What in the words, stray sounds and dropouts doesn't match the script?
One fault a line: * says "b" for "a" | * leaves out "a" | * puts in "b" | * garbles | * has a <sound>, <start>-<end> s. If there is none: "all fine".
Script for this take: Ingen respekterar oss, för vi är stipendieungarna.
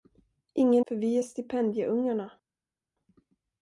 * leaves out "respekterar oss"